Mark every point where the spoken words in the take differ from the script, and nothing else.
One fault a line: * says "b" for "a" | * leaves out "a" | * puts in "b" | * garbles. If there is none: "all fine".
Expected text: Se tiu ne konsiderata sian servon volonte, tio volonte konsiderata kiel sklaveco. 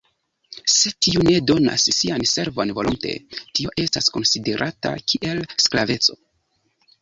* says "donas" for "konsiderata"
* says "estas" for "volonte"